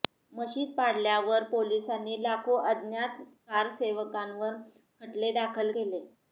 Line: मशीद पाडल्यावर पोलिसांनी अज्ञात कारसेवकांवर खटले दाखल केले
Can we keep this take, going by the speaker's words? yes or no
no